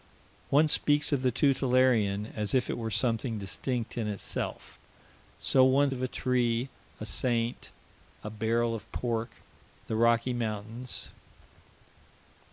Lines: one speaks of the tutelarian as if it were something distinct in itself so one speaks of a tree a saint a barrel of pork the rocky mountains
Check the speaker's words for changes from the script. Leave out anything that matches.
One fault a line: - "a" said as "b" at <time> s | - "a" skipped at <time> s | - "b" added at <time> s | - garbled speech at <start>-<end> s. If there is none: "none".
- "speaks" skipped at 5.9 s